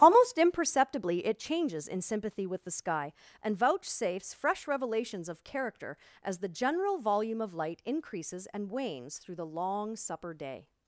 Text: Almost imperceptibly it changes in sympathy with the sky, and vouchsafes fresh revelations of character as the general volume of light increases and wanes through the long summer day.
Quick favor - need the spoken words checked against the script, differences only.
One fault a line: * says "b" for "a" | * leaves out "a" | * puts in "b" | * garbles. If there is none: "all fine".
* says "supper" for "summer"